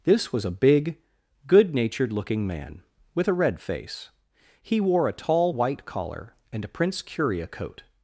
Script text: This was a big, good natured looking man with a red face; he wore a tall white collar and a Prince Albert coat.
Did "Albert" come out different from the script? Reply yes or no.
yes